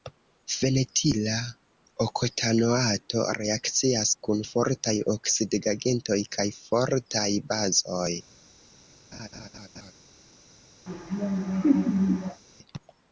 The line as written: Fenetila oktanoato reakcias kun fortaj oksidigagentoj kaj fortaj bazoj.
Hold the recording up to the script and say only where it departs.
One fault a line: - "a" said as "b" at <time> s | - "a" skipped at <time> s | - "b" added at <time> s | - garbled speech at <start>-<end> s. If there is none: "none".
none